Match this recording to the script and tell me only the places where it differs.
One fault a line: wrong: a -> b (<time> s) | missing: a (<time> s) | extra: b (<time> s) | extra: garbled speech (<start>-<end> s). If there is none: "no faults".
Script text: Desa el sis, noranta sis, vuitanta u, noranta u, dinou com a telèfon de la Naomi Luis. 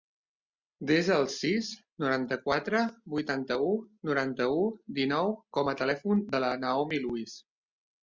wrong: sis -> quatre (2.5 s)